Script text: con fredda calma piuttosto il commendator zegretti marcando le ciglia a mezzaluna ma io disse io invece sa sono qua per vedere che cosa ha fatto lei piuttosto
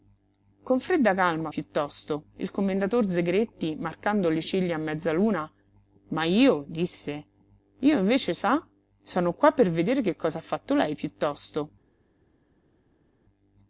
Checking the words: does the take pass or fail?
pass